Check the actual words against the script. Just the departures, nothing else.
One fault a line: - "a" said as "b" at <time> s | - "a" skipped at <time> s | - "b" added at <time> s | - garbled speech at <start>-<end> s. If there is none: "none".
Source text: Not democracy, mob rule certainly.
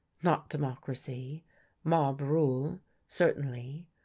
none